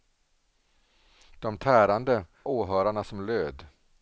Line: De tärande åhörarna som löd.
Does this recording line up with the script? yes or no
yes